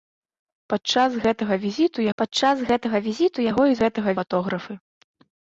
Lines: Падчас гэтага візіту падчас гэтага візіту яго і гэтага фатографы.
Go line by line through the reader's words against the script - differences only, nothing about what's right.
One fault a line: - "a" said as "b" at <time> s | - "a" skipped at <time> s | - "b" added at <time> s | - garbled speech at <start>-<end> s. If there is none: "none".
none